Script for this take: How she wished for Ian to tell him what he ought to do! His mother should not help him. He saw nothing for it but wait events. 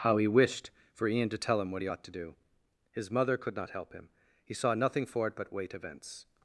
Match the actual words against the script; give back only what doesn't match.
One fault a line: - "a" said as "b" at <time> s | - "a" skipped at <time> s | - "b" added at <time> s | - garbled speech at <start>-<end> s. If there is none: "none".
- "she" said as "he" at 0.2 s
- "should" said as "could" at 3.4 s